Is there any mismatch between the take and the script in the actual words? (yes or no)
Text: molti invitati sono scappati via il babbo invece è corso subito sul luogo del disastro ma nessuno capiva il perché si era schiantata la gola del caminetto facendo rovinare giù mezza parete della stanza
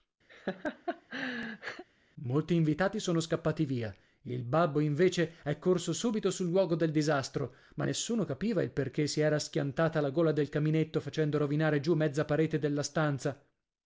no